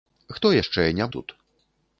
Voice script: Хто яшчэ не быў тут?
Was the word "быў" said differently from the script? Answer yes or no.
yes